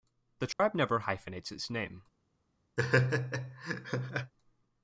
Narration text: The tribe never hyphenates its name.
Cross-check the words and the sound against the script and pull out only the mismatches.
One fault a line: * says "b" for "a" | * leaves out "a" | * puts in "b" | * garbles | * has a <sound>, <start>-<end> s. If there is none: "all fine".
* has a dropout, 0.5-0.6 s
* has a laugh, 2.8-4.3 s